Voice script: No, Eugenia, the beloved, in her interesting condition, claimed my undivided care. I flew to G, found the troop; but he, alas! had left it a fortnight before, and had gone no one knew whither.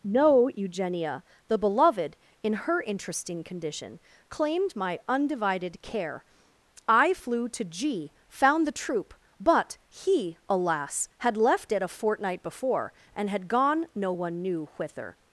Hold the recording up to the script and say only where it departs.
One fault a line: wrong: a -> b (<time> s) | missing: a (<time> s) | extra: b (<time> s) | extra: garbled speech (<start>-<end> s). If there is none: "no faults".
no faults